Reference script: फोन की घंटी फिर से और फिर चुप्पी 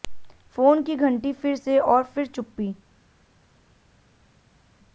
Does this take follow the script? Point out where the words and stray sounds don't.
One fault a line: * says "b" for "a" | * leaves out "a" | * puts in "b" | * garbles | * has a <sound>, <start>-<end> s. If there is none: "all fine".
all fine